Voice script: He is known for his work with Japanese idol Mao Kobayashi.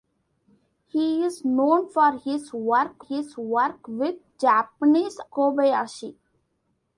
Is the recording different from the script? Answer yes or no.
yes